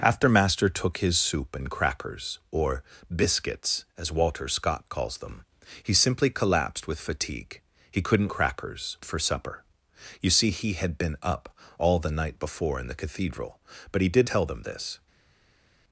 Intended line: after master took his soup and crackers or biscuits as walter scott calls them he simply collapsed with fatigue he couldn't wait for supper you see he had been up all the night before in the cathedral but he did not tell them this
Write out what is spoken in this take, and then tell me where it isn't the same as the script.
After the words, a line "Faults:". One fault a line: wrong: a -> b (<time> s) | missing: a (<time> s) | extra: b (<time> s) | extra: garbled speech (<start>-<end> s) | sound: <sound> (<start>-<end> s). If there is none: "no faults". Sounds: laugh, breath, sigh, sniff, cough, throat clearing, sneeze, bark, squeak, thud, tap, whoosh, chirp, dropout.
after master took his soup and crackers or biscuits as walter scott calls them he simply collapsed with fatigue he couldn't crackers for supper you see he had been up all the night before in the cathedral but he did tell them this
Faults:
wrong: wait -> crackers (8.3 s)
missing: not (14.3 s)